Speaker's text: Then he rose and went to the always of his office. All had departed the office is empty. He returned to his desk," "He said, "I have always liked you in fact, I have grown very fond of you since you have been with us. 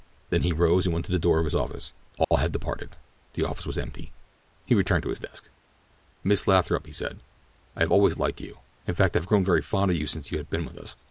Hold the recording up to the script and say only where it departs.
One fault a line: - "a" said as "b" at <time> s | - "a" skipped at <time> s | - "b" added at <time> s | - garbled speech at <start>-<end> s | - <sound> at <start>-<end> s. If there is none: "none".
- "always" said as "door" at 1.2 s
- dropout at 2.2-2.3 s
- "is" said as "was" at 3.7 s
- "Miss Lathrop" added at 6.2 s